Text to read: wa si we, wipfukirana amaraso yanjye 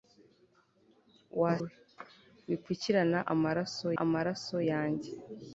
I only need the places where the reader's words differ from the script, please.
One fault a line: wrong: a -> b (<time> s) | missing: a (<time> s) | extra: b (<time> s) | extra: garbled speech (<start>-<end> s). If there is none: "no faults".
missing: si (1.5 s)
extra: amaraso (4.0 s)